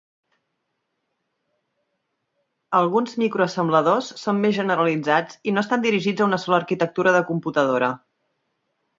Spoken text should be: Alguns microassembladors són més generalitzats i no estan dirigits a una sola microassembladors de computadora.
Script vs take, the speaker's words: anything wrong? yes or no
yes